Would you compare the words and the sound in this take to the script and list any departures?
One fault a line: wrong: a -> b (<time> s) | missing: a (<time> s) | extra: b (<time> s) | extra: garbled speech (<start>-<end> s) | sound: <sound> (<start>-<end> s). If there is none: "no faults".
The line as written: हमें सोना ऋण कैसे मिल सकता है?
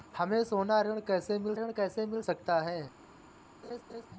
extra: ऋण कैसे मिल (1.5 s)
sound: laugh (3.6-4.1 s)